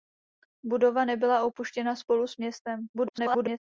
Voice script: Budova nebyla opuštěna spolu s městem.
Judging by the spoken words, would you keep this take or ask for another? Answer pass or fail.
fail